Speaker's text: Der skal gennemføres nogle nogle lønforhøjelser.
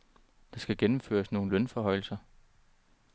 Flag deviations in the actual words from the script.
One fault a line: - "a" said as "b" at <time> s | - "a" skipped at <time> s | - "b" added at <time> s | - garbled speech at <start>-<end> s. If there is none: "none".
- "nogle" skipped at 1.5 s